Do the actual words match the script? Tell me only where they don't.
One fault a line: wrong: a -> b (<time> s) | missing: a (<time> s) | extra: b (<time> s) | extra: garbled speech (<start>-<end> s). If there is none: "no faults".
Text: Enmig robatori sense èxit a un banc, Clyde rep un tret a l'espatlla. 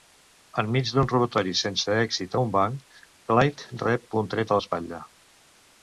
extra: d'un (0.9 s)